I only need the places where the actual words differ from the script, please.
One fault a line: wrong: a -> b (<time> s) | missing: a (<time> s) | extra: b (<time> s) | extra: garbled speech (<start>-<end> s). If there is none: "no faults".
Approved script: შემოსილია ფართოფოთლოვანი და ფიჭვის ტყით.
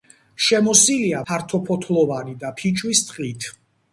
no faults